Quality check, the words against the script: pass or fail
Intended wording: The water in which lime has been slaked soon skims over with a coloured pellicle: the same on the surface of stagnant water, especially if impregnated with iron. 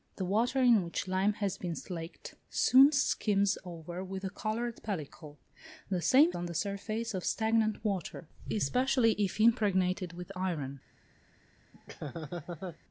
pass